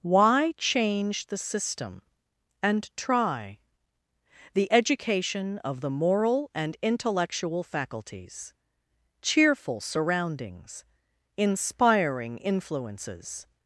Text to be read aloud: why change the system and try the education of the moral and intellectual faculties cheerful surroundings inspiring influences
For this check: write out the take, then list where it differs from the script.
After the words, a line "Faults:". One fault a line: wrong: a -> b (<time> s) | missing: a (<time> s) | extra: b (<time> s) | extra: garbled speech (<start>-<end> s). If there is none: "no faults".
why change the system and try the education of the moral and intellectual faculties cheerful surroundings inspiring influences
Faults:
no faults